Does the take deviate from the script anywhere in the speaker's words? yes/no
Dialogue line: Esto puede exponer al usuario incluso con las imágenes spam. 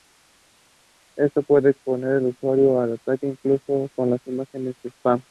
yes